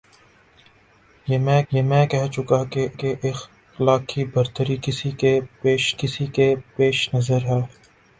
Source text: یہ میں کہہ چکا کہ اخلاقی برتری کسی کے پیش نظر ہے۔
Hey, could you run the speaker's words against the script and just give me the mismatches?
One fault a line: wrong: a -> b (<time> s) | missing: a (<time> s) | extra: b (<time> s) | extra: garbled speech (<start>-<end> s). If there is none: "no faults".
extra: یہ میں (1.7 s)
extra: کہ (2.9 s)
extra: کسی کے پیش (6.0 s)